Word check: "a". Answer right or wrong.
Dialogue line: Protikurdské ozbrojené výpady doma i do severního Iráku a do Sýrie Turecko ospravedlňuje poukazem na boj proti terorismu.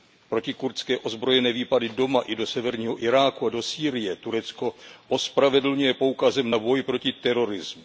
right